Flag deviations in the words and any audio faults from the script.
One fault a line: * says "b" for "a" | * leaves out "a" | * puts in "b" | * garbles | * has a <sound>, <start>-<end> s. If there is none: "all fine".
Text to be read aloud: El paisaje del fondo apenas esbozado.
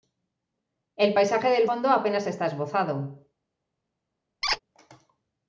* puts in "está"
* has a squeak, 4.4-4.6 s